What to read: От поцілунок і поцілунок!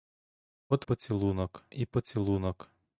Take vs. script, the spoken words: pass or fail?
pass